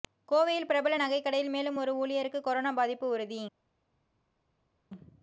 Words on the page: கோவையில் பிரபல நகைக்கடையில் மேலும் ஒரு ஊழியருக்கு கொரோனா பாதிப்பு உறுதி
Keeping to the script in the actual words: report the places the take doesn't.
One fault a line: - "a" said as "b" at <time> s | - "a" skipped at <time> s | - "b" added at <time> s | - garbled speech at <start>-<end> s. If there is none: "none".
none